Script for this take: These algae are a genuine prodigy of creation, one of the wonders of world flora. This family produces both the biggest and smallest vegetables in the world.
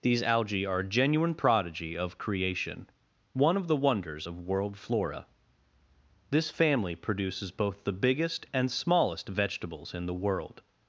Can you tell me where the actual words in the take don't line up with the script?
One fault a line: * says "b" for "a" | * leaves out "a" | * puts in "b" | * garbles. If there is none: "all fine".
all fine